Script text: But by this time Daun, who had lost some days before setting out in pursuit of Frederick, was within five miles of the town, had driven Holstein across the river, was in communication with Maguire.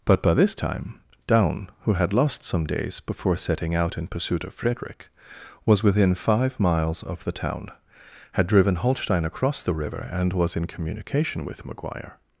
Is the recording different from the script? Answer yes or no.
yes